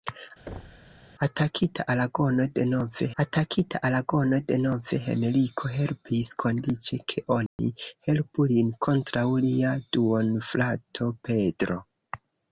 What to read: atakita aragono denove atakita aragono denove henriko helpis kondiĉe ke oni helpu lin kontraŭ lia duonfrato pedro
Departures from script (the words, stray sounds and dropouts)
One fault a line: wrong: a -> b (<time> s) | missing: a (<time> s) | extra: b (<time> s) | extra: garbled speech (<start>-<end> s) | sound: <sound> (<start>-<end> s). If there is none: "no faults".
sound: thud (0.5-0.9 s)
sound: dropout (7.5-7.6 s)